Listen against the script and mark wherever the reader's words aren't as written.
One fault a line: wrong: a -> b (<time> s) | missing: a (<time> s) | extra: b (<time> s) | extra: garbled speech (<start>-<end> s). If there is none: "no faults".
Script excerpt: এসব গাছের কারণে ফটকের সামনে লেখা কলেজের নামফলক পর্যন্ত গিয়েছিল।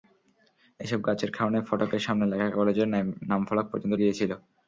no faults